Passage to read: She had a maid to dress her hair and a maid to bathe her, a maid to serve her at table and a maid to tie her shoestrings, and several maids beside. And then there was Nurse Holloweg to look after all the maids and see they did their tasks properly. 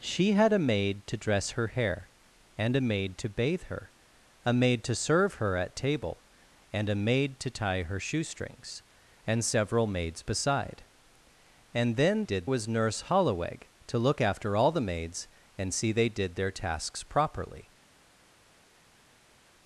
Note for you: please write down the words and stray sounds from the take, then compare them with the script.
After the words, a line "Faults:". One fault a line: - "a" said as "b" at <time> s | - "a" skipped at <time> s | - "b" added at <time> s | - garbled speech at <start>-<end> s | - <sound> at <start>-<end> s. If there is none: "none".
She had a maid to dress her hair and a maid to bathe her, a maid to serve her at table and a maid to tie her shoestrings, and several maids beside. And then did was Nurse Holloweg to look after all the maids and see they did their tasks properly.
Faults:
- "there" said as "did" at 12.2 s